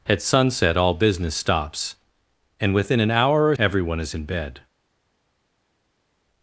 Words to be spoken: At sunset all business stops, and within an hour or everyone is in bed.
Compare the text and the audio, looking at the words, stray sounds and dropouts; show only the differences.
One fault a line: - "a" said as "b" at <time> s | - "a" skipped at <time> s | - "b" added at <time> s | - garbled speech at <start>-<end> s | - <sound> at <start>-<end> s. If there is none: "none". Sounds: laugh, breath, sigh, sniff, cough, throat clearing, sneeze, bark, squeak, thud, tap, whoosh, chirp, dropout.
none